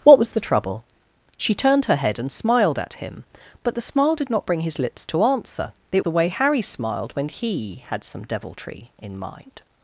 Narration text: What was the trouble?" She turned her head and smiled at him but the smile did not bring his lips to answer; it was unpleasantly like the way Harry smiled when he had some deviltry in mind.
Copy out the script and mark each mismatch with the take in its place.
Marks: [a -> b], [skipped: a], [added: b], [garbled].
What was the trouble?" She turned her head and smiled at him but the smile did not bring his lips to answer; it [skipped: was unpleasantly like] the way Harry smiled when he had some deviltry in mind.